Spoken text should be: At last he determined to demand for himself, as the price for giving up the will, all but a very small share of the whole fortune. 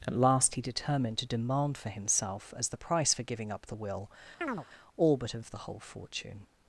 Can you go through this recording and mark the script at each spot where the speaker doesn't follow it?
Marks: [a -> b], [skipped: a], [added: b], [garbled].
At last he determined to demand for himself, as the price for giving up the will, all but a [skipped: very small share] of the whole fortune.